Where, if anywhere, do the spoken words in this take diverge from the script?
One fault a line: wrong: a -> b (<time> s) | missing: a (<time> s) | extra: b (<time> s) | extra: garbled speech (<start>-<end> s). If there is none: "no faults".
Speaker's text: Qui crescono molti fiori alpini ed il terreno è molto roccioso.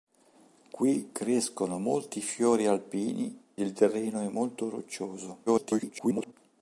missing: ed (3.4 s)
extra: garbled speech (5.5-6.3 s)